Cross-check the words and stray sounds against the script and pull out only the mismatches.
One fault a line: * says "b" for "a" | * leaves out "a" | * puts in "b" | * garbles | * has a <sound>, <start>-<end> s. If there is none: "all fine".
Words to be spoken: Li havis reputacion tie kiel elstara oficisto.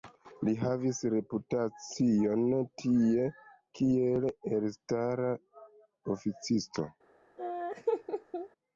* has a laugh, 7.4-8.5 s